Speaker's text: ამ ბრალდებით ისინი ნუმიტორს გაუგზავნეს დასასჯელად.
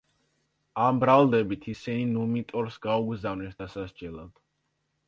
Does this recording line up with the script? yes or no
yes